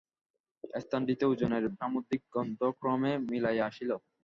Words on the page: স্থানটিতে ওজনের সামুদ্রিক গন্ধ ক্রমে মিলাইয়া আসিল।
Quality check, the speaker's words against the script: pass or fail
pass